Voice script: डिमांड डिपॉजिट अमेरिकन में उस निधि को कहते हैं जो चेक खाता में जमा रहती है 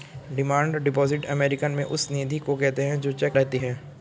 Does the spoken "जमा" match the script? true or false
false